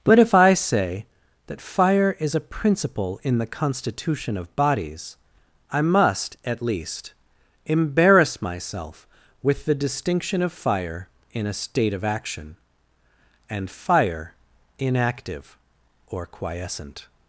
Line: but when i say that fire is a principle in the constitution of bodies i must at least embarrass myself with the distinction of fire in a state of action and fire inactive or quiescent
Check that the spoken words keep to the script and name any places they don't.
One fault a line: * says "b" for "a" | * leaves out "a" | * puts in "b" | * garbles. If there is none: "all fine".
* says "if" for "when"